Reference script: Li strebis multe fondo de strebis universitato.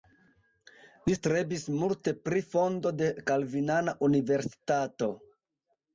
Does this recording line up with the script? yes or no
no